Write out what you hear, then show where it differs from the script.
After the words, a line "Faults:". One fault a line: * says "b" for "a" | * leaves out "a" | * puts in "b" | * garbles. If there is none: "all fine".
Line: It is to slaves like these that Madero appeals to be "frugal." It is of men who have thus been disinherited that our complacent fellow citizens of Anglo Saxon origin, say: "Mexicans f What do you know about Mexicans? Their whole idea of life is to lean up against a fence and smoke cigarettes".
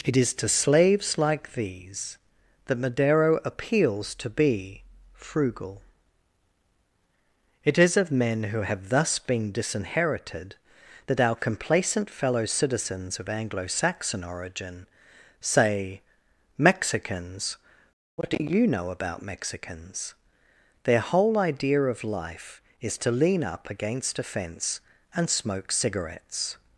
It is to slaves like these that Madero appeals to be "frugal." It is of men who have thus been disinherited that our complacent fellow citizens of Anglo Saxon origin, say: "Mexicans What do you know about Mexicans? Their whole idea of life is to lean up against a fence and smoke cigarettes".
Faults:
* leaves out "f"